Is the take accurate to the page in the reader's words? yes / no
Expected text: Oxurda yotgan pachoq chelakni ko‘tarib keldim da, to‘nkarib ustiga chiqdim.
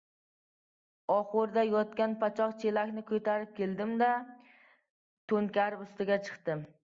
yes